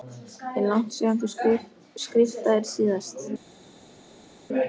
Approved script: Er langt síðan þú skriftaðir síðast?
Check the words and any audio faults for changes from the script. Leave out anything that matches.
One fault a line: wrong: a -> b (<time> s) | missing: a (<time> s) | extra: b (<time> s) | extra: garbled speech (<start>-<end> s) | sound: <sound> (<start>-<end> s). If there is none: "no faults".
no faults